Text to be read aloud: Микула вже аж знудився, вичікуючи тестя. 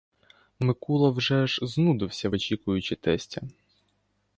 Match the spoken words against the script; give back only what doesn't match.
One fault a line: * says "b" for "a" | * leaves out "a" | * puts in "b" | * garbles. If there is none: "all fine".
all fine